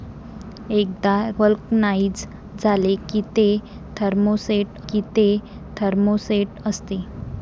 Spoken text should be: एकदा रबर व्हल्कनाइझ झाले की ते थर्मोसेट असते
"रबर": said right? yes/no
no